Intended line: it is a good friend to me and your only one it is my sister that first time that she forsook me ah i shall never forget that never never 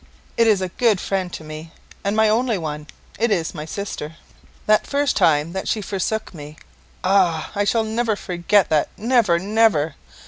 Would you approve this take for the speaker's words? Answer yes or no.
no